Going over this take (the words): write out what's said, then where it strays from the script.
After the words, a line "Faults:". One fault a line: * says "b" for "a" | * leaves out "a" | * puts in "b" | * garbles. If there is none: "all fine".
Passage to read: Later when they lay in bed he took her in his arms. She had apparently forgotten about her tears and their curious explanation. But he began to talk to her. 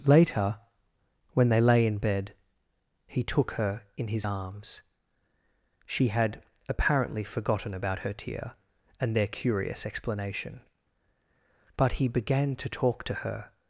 Later when they lay in bed he took her in his arms. She had apparently forgotten about her tear and their curious explanation. But he began to talk to her.
Faults:
* says "tear" for "tears"